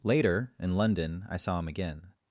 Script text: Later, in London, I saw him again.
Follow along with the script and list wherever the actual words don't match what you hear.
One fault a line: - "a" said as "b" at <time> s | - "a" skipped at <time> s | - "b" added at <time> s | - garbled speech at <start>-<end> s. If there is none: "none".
none